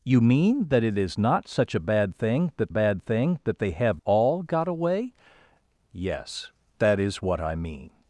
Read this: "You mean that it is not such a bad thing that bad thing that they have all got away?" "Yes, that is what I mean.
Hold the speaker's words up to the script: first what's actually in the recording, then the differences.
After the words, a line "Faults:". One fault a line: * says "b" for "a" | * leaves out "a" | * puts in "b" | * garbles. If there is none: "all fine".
"You mean that it is not such a bad thing that bad thing that they have all got away?" "Yes, that is what I mean.
Faults:
all fine